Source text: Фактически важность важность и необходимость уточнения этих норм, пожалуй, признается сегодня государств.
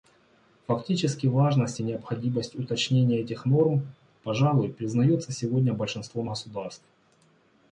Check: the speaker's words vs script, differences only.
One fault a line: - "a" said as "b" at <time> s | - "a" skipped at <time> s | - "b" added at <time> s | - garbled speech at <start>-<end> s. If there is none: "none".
- "важность" skipped at 1.8 s
- "большинством" added at 5.7 s